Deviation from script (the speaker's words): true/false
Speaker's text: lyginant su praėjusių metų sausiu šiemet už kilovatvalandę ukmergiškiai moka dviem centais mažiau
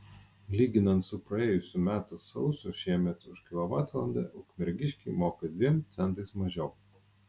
false